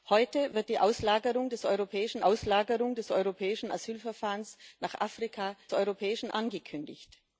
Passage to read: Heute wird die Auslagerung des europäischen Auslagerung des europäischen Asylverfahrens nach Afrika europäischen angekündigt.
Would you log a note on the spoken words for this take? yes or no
no